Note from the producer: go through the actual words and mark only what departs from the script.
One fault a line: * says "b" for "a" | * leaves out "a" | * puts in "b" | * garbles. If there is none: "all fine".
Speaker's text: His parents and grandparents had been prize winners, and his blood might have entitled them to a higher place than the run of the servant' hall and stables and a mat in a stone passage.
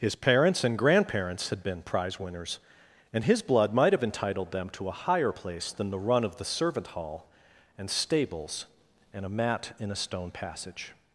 all fine